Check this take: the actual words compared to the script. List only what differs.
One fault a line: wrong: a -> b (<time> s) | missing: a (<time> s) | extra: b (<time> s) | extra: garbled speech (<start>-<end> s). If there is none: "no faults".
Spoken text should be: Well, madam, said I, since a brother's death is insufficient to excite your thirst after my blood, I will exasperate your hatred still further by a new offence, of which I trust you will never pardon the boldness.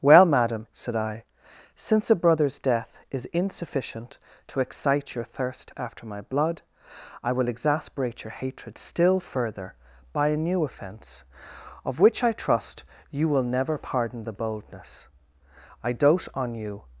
extra: I dote on you (15.8 s)